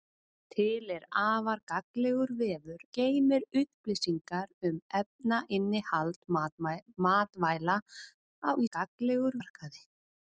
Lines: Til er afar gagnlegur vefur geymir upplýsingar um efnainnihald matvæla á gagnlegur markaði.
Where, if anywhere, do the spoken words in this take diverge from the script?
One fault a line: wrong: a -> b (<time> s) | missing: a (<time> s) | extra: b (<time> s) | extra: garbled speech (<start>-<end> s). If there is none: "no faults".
no faults